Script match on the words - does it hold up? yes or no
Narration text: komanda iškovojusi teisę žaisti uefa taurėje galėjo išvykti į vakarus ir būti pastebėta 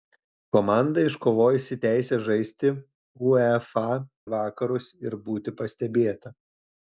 no